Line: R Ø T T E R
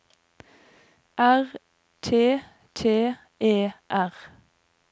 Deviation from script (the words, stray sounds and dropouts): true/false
true